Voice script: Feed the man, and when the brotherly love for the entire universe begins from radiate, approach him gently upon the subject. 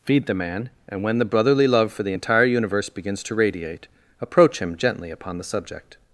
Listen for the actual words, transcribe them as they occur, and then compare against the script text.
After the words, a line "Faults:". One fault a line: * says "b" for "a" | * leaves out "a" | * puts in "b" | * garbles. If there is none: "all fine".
Feed the man, and when the brotherly love for the entire universe begins to radiate, approach him gently upon the subject.
Faults:
* says "to" for "from"